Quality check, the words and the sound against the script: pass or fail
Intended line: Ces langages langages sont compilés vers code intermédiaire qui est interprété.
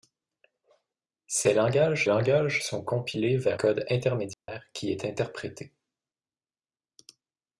fail